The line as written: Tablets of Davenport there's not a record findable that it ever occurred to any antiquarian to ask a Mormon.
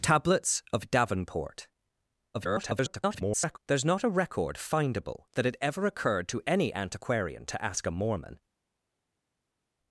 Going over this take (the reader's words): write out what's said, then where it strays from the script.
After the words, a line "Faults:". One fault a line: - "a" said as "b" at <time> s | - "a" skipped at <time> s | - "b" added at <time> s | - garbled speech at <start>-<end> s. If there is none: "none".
Tablets of Davenport [garbled] there's not a record findable that it ever occurred to any antiquarian to ask a Mormon.
Faults:
- garbled speech at 2.3-3.6 s